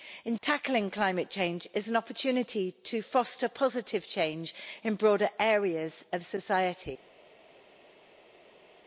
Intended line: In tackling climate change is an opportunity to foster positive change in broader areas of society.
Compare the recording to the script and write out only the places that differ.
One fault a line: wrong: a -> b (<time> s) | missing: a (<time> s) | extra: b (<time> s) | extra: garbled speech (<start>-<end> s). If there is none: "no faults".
no faults